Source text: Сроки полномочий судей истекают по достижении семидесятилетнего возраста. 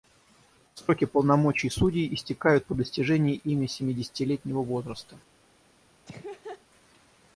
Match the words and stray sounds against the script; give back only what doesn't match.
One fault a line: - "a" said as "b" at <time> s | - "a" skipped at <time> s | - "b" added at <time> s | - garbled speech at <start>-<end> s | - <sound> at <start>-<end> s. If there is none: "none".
- "ими" added at 3.4 s
- laugh at 6.1-6.6 s